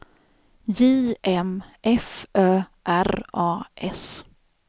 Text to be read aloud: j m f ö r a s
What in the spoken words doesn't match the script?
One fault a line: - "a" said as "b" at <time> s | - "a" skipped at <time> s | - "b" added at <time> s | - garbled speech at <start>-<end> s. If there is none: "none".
none